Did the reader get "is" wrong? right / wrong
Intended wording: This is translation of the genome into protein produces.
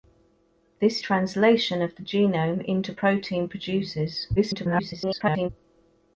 wrong